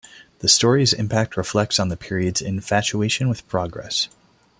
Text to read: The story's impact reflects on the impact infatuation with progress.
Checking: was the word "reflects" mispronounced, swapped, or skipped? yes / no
no